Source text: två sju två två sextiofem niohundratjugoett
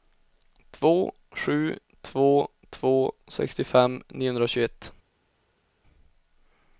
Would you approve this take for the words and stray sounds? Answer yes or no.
yes